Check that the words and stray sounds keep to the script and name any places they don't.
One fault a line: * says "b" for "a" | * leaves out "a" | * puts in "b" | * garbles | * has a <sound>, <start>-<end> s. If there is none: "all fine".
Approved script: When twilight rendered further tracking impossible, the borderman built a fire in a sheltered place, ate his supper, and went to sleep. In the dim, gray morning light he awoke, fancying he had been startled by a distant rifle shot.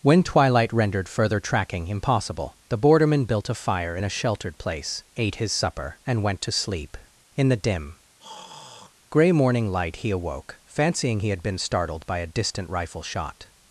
* has a throat clearing, 8.2-8.9 s